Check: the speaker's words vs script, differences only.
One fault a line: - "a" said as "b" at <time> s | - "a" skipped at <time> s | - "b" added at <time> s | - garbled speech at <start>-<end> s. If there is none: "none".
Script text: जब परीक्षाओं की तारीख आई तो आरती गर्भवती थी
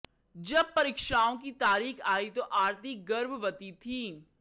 none